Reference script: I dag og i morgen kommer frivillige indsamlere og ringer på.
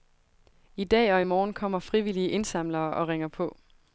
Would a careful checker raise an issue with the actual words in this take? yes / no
no